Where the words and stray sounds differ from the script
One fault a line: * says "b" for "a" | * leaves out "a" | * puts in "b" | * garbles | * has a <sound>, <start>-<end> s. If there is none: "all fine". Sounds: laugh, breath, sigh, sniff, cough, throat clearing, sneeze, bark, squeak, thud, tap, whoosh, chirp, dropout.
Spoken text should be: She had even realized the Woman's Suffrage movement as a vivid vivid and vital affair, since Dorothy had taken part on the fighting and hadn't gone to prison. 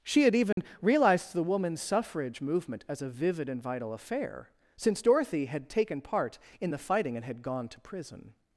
* has a dropout, 0.5-0.6 s
* leaves out "vivid"
* says "in" for "on"
* says "had" for "hadn't"